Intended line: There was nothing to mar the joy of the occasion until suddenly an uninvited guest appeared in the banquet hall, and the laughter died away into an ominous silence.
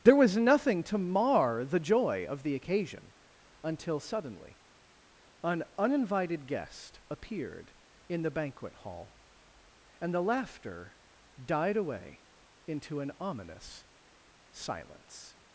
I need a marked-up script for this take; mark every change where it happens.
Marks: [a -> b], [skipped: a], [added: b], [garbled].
There was nothing to mar the joy of the occasion until suddenly an uninvited guest appeared in the banquet hall, and the laughter died away into an ominous silence.